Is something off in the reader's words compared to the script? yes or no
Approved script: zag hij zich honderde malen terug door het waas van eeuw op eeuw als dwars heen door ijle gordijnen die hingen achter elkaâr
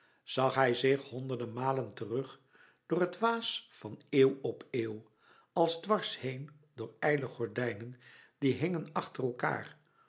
no